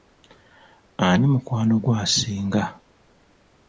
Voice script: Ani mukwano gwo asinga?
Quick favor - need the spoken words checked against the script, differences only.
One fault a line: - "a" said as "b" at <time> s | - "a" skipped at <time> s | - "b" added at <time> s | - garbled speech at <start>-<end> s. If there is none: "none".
none